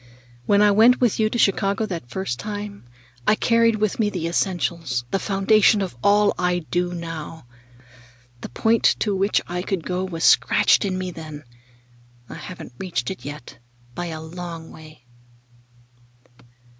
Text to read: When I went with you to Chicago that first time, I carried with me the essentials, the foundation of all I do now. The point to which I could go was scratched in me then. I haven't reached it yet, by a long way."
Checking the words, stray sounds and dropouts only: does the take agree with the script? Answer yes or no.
yes